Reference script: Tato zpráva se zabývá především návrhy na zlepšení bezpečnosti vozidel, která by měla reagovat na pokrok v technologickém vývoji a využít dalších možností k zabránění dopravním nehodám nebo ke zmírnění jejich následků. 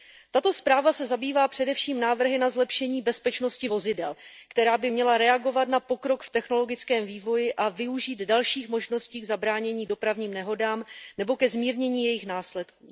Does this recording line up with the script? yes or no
yes